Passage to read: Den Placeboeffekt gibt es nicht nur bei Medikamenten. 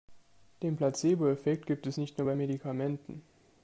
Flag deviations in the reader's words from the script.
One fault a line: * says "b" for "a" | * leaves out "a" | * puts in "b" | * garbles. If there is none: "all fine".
all fine